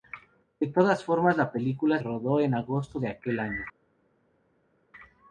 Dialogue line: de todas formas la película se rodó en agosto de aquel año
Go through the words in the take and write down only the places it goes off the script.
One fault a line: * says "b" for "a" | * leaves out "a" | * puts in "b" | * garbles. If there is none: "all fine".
* leaves out "se"